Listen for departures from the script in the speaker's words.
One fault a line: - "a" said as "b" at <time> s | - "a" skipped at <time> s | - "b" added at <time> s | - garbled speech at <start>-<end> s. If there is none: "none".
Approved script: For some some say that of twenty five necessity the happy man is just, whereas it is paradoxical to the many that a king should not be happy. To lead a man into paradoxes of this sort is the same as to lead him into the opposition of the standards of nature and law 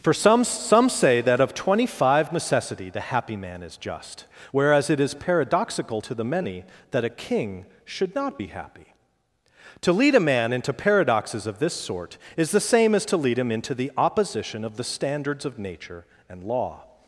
none